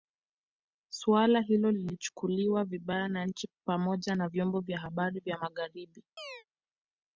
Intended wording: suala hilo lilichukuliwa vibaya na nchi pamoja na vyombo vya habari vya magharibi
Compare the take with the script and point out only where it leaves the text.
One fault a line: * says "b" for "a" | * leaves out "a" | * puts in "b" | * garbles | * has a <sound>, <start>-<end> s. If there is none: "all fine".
* has a chirp, 6.2-6.4 s